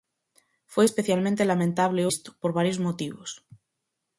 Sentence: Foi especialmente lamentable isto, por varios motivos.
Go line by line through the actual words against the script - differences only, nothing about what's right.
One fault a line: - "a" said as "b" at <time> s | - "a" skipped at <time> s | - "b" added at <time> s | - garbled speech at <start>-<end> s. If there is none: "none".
none